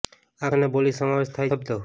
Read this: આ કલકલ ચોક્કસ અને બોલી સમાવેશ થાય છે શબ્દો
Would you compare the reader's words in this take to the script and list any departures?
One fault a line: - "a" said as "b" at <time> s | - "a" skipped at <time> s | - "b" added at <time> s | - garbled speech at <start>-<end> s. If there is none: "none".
- "કલકલ ચોક્કસ" skipped at 0.5 s
- "છે" skipped at 1.5 s